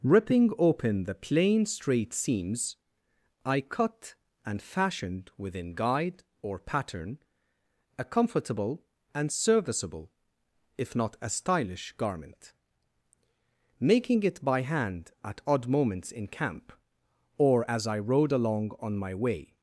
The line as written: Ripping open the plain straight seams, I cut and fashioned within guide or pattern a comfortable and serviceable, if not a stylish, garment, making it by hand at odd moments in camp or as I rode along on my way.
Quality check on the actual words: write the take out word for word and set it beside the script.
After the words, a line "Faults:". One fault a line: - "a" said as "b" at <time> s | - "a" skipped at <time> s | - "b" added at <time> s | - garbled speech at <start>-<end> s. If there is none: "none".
Ripping open the plain straight seams, I cut and fashioned within guide or pattern a comfortable and serviceable, if not a stylish, garment, making it by hand at odd moments in camp or as I rode along on my way.
Faults:
none